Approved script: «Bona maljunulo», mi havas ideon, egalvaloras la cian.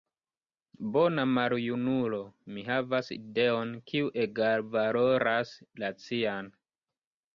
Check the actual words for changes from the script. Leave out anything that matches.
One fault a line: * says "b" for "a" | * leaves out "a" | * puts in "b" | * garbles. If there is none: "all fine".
* puts in "kiu"